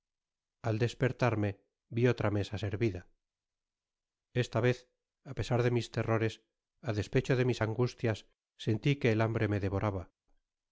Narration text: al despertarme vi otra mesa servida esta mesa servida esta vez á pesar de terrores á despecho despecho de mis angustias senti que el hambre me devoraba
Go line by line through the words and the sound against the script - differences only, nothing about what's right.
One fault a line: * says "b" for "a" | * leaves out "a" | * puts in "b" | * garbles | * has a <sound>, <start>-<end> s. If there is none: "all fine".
* leaves out "mesa servida esta"
* puts in "mis"
* leaves out "despecho"